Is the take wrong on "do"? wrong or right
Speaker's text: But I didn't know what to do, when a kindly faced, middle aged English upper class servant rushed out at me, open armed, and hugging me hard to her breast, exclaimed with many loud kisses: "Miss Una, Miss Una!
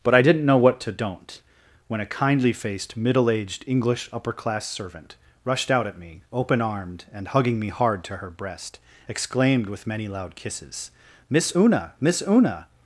wrong